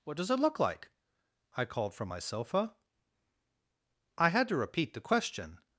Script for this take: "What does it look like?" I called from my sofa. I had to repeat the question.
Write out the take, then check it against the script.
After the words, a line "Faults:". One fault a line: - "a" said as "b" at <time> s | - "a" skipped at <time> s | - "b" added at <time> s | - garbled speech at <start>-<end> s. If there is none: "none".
"What does it look like?" I called from my sofa. I had to repeat the question.
Faults:
none